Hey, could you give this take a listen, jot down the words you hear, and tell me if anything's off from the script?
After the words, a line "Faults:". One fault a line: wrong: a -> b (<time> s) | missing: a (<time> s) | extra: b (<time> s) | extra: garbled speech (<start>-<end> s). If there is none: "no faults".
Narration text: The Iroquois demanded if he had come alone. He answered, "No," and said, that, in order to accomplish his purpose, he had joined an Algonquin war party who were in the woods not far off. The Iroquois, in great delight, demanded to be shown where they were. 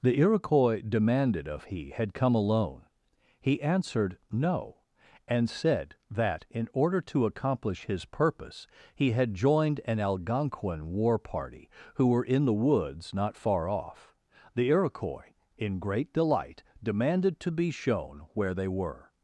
The Iroquois demanded of he had come alone. He answered, "No," and said, that, in order to accomplish his purpose, he had joined an Algonquin war party who were in the woods not far off. The Iroquois, in great delight, demanded to be shown where they were.
Faults:
wrong: if -> of (1.5 s)